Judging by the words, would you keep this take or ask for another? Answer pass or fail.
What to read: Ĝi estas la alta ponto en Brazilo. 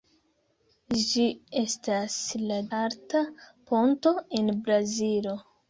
pass